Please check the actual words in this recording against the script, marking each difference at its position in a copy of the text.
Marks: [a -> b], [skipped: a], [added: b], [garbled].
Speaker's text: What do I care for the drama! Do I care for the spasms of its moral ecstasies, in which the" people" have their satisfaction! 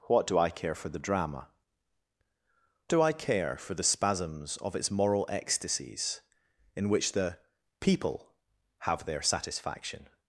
What do I care for the drama! Do I care for the spasms of its moral ecstasies, in which the" people" have their satisfaction!